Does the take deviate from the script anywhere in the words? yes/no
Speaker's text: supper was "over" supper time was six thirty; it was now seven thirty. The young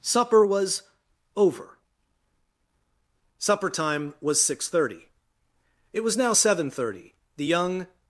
no